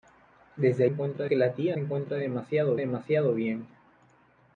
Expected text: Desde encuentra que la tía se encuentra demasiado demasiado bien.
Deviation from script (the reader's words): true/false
false